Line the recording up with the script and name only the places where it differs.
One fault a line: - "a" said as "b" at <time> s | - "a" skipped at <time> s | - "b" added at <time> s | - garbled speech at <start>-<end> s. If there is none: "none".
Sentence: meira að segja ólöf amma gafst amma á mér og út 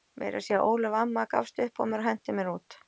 - "amma" said as "upp" at 1.7 s
- "henti mér" added at 2.1 s